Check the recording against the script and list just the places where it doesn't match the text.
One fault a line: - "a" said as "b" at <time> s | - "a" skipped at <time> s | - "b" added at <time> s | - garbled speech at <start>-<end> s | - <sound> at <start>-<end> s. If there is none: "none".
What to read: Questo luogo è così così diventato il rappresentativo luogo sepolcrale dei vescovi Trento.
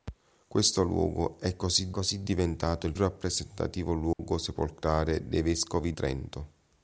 - dropout at 4.1-4.2 s